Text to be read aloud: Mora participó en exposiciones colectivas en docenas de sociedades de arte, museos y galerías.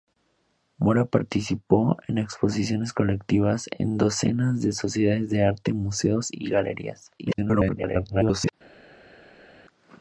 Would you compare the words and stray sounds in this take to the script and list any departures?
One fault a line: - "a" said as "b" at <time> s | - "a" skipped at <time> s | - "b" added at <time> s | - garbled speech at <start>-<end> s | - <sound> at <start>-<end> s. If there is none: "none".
- garbled speech at 7.2-8.5 s